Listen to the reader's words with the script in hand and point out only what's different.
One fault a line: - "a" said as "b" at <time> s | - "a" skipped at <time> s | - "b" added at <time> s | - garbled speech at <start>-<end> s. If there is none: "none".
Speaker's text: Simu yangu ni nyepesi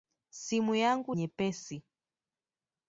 - "ni" skipped at 1.1 s